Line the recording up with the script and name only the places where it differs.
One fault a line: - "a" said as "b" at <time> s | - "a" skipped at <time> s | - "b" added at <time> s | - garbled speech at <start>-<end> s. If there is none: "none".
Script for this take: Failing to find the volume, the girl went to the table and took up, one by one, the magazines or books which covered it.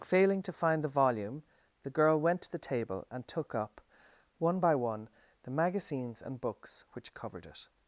- "or" said as "and" at 6.2 s